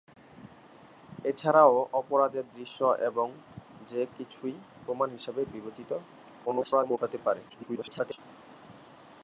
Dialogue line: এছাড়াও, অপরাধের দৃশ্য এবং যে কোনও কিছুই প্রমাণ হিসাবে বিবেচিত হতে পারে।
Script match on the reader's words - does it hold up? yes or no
no